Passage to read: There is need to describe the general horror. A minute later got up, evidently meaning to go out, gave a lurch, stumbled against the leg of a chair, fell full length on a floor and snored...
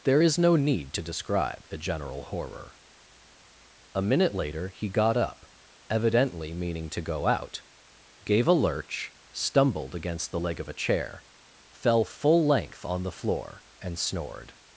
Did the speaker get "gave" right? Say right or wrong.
right